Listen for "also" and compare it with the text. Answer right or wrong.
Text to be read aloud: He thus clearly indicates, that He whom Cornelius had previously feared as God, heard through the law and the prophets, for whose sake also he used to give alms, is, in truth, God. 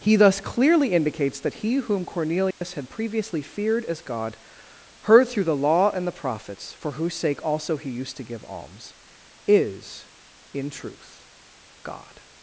right